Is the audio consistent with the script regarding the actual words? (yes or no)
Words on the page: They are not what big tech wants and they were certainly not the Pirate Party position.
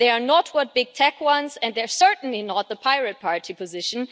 no